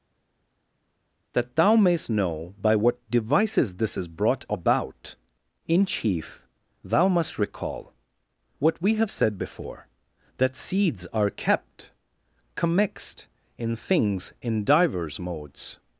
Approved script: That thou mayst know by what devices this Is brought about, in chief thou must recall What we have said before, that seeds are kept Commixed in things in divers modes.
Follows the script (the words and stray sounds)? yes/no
yes